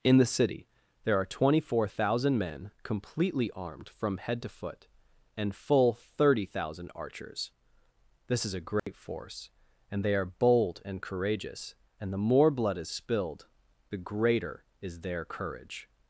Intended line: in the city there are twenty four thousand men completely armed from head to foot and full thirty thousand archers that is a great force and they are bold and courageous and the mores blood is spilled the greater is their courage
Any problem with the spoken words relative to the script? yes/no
yes